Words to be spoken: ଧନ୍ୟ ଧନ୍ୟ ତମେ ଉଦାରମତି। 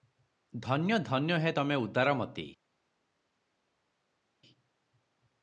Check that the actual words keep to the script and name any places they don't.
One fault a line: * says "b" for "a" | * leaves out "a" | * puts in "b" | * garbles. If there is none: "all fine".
* puts in "ହେ"